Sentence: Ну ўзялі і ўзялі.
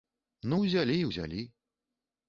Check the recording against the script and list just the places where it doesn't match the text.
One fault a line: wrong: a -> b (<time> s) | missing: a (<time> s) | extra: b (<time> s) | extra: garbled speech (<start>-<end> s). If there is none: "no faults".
no faults